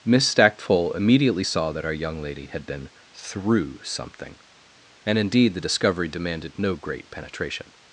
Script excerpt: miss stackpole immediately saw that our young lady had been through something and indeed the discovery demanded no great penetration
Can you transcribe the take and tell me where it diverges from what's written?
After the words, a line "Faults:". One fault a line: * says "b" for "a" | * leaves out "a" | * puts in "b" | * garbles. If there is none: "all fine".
miss stackpole immediately saw that our young lady had been through something and indeed the discovery demanded no great penetration
Faults:
all fine